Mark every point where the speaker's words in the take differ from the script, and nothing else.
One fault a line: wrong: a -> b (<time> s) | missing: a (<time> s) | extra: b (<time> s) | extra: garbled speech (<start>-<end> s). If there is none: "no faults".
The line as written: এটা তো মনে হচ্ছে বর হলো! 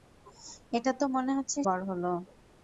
no faults